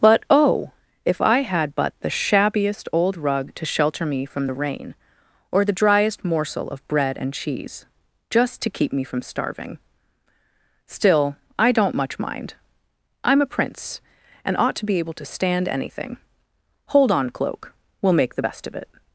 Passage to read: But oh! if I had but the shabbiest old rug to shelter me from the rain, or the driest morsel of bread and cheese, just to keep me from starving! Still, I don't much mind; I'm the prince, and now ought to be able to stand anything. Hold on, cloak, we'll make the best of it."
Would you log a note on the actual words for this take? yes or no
yes